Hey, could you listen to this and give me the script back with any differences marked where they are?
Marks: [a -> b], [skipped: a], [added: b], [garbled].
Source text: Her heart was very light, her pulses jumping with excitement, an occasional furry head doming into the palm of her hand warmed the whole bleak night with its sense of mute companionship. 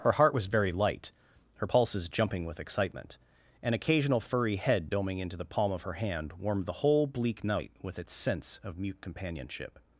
Her heart was very light, her pulses jumping with excitement, an occasional furry head doming into the palm of her hand warmed the whole bleak night with its sense of mute companionship.